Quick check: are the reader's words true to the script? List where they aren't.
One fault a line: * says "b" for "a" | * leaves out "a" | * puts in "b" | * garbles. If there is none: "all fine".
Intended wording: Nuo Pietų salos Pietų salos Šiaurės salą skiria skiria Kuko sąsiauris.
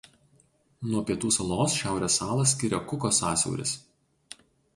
* leaves out "Pietų salos"
* leaves out "skiria"